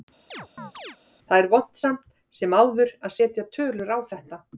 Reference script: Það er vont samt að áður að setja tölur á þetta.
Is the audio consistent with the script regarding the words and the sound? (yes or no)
no